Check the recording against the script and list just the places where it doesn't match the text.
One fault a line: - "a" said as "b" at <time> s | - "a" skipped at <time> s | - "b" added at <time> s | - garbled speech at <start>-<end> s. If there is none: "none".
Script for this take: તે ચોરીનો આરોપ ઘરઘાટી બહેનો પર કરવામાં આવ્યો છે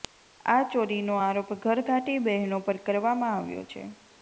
- "તે" said as "આ" at 0.5 s